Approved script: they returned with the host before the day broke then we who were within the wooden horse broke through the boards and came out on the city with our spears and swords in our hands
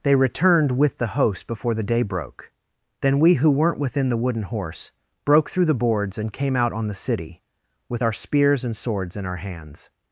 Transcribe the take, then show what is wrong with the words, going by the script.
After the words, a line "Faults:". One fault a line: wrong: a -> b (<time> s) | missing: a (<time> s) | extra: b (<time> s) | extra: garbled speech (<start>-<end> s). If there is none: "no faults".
they returned with the host before the day broke then we who weren't within the wooden horse broke through the boards and came out on the city with our spears and swords in our hands
Faults:
wrong: were -> weren't (3.5 s)